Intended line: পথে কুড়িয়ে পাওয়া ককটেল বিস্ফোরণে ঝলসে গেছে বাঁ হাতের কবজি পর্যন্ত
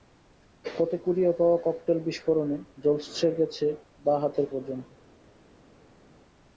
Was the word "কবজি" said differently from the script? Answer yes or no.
yes